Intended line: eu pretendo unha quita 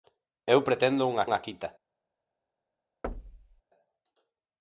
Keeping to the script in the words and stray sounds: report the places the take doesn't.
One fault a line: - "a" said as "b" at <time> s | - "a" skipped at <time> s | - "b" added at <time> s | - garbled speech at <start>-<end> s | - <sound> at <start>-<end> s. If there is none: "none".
- "unha" added at 1.2 s
- thud at 3.0-3.6 s